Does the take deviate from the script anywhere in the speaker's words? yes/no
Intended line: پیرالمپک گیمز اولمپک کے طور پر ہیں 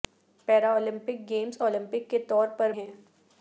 no